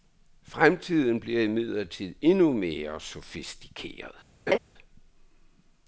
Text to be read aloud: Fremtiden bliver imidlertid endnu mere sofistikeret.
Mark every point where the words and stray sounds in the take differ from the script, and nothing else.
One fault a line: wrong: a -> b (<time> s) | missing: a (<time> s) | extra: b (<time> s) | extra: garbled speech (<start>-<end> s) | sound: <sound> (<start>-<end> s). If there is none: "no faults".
sound: laugh (4.5-4.6 s)